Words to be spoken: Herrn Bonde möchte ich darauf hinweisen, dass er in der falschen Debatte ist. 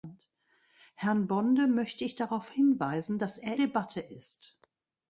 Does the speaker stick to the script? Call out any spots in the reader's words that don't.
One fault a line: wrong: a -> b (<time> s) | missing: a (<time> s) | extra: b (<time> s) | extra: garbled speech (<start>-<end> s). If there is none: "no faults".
missing: in der falschen (3.5 s)